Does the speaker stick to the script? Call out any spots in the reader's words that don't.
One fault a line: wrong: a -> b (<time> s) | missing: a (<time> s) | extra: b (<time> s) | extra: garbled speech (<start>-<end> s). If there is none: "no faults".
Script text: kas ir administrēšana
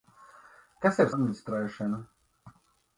no faults